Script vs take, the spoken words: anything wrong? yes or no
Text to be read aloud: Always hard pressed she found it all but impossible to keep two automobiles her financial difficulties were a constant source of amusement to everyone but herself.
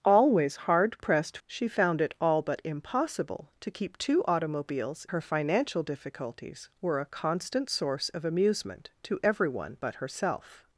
no